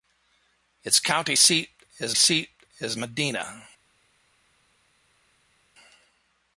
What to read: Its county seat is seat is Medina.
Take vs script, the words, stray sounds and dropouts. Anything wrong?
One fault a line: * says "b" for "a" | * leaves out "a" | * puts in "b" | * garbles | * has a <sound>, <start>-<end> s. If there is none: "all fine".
all fine